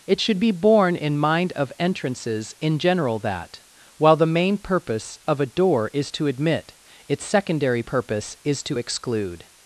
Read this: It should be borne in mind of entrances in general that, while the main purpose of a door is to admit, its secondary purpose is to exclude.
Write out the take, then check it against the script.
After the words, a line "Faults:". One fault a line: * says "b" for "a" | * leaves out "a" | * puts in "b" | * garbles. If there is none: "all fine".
It should be borne in mind of entrances in general that, while the main purpose of a door is to admit, its secondary purpose is to exclude.
Faults:
all fine